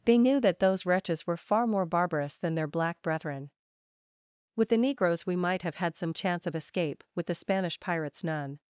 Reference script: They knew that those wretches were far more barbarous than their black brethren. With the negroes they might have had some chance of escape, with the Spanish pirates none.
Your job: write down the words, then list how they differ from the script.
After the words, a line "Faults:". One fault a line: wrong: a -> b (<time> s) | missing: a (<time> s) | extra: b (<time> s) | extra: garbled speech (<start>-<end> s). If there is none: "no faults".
They knew that those wretches were far more barbarous than their black brethren. With the negroes we might have had some chance of escape, with the Spanish pirates none.
Faults:
wrong: they -> we (5.2 s)